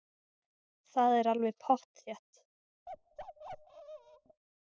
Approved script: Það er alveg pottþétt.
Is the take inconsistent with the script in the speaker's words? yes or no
no